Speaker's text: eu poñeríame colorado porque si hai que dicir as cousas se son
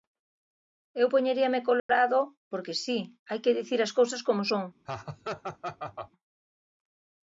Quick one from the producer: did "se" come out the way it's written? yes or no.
no